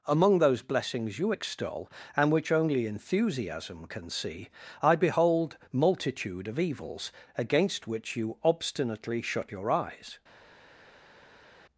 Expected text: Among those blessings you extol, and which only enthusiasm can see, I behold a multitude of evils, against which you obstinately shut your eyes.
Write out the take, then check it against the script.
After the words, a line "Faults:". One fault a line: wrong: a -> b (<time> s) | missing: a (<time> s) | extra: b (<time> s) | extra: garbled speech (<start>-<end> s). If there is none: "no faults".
Among those blessings you extol, and which only enthusiasm can see, I behold multitude of evils, against which you obstinately shut your eyes.
Faults:
missing: a (5.6 s)